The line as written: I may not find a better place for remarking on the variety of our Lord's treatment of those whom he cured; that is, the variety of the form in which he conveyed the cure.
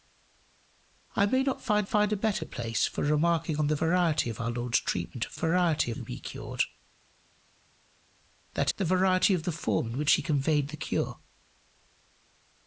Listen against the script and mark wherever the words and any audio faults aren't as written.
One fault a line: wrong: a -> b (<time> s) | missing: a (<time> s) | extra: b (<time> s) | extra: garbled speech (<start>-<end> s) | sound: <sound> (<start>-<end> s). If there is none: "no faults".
extra: find (1.9 s)
wrong: those -> variety (5.3 s)
missing: is (8.7 s)